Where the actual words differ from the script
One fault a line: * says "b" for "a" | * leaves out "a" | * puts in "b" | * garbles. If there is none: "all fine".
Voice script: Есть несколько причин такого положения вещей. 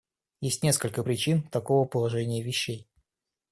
all fine